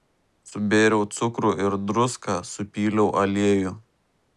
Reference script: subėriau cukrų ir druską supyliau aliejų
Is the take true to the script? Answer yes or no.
yes